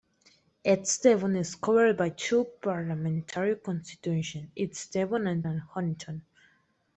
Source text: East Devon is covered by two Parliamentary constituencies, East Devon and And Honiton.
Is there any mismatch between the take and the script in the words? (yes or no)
no